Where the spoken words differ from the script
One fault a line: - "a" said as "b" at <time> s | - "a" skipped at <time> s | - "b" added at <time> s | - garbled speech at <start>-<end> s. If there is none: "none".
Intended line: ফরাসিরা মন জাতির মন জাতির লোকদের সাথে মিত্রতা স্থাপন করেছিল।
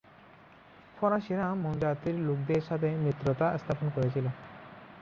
- "মন জাতির" skipped at 2.2 s